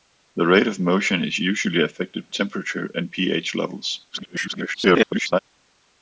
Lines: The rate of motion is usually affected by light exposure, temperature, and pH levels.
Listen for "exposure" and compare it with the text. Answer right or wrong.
wrong